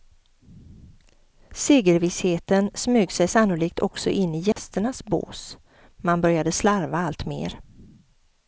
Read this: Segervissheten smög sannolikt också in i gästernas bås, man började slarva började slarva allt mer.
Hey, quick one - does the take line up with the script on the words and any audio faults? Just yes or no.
no